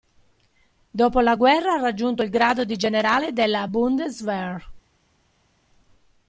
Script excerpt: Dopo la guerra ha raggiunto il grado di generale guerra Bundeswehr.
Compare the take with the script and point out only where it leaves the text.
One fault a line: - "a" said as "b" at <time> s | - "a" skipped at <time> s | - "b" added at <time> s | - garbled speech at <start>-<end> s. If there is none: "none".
- "guerra" said as "della" at 3.3 s